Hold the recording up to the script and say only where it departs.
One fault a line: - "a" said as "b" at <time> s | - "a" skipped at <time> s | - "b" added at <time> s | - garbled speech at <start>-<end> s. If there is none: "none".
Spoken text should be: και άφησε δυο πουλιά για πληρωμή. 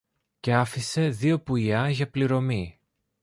none